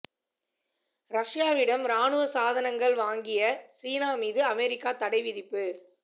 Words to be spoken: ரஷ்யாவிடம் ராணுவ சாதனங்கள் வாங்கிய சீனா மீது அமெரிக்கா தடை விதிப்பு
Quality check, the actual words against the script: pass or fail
pass